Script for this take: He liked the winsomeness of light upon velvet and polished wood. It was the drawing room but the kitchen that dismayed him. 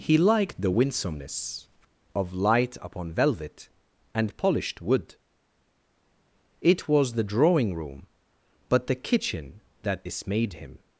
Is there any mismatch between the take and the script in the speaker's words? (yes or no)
no